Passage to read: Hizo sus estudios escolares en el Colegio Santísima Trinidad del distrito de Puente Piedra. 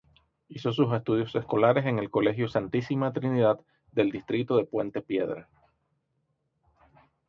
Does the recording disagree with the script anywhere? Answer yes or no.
no